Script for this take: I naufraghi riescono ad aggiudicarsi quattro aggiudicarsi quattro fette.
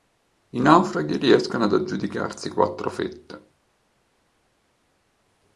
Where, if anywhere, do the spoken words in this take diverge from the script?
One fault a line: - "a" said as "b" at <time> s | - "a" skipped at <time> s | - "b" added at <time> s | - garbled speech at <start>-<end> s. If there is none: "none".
- "aggiudicarsi quattro" skipped at 2.9 s